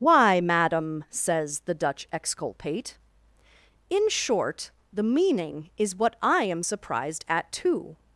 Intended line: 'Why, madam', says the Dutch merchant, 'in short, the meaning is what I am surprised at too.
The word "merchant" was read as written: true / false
false